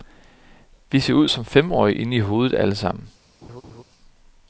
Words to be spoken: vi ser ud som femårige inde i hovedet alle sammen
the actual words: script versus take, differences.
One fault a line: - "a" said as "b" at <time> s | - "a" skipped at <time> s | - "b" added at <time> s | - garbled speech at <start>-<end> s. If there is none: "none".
none